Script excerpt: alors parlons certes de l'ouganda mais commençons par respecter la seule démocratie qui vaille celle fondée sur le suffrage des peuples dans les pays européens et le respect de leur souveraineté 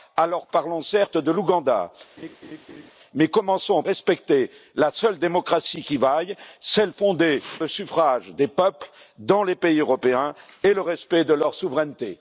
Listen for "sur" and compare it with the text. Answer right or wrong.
wrong